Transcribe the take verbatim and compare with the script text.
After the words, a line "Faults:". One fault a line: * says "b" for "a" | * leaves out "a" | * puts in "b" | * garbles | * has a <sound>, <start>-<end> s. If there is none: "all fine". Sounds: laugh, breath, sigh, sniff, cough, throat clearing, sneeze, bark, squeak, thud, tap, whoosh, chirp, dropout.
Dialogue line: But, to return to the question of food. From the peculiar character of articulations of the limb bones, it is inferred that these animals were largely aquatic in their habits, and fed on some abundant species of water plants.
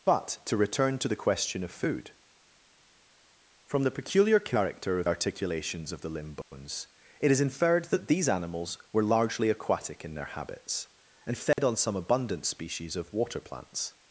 But, to return to the question of food. From the peculiar character of articulations of the limb bones, it is inferred that these animals were largely aquatic in their habits, and fed on some abundant species of water plants.
Faults:
* has a dropout, 6.4-6.5 s
* has a dropout, 11.5-11.6 s